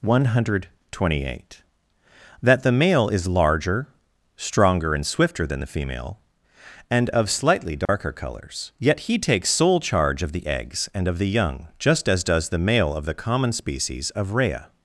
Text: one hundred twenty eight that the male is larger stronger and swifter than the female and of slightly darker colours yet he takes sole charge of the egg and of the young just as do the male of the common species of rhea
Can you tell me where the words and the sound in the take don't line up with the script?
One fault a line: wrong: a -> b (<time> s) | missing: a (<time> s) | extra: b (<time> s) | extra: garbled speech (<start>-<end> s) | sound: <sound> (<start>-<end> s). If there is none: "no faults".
sound: dropout (7.8-7.9 s)
wrong: egg -> eggs (10.5 s)
wrong: do -> does (12.3 s)